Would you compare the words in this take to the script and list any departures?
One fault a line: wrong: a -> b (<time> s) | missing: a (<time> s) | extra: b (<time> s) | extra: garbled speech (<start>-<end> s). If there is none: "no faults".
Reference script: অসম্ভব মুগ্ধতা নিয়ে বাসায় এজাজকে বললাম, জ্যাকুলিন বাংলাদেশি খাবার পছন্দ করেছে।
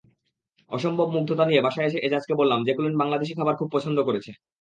extra: এসে (1.9 s)
extra: খুব (3.6 s)